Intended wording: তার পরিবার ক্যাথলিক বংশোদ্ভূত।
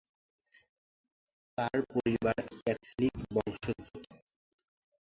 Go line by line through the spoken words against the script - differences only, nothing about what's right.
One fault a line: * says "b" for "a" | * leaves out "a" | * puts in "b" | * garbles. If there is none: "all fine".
all fine